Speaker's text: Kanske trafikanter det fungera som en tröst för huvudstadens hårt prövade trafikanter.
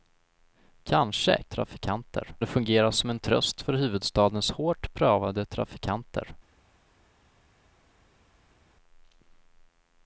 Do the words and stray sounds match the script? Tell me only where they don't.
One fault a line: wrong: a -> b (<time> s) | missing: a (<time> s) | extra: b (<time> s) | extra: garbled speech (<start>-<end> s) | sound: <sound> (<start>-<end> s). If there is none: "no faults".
no faults